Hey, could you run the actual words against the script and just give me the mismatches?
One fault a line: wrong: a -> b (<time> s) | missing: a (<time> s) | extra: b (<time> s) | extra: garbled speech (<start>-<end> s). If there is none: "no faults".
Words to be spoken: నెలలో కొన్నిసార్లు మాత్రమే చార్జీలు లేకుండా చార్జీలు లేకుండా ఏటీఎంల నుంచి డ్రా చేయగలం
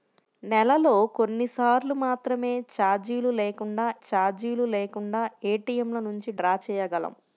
no faults